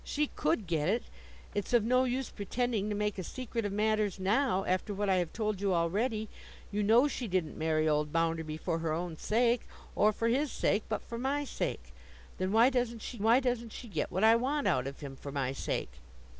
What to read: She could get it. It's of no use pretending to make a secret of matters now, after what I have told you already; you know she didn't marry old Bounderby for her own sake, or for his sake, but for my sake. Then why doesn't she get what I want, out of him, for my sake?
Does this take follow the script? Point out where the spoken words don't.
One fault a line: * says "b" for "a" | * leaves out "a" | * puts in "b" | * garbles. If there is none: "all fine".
* puts in "why doesn't she"